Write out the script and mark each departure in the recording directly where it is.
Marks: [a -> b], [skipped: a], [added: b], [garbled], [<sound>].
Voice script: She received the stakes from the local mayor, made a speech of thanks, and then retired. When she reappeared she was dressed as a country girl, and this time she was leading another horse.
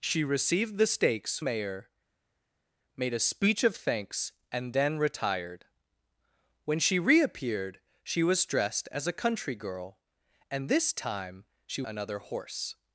She received the stakes [skipped: from the local] mayor, made a speech of thanks, and then retired. When she reappeared she was dressed as a country girl, and this time she [skipped: was leading] another horse.